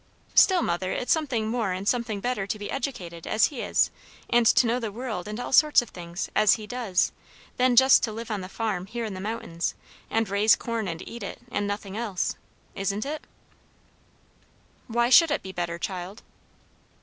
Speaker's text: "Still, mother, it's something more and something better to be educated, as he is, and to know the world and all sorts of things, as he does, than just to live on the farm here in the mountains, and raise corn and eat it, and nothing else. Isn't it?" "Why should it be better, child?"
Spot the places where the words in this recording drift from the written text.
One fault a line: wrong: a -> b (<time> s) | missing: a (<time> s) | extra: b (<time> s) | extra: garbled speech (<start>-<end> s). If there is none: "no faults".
no faults